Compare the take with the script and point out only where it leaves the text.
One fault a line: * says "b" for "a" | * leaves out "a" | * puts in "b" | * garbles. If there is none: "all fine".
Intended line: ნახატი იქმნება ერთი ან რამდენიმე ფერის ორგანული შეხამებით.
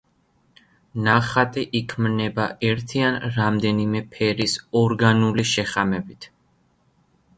all fine